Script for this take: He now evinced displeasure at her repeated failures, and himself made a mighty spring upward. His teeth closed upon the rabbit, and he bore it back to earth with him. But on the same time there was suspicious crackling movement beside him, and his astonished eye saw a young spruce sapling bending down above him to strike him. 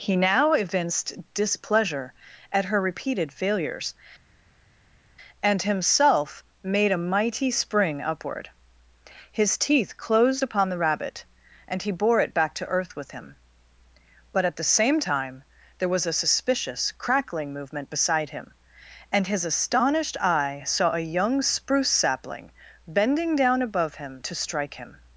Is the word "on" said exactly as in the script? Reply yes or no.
no